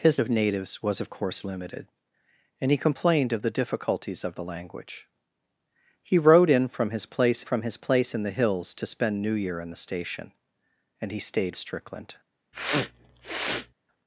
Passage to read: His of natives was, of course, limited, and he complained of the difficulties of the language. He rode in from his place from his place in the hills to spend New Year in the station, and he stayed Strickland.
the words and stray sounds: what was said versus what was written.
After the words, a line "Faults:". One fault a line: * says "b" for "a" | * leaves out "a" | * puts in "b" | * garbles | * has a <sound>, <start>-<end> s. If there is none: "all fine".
His of natives was, of course, limited, and he complained of the difficulties of the language. He rode in from his place from his place in the hills to spend New Year in the station, and he stayed Strickland.
Faults:
* has a sniff, 12.5-13.7 s